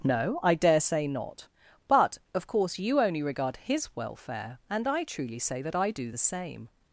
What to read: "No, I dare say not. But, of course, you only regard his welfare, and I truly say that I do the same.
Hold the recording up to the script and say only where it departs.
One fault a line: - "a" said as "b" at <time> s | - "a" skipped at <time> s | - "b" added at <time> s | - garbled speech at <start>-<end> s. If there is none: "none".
none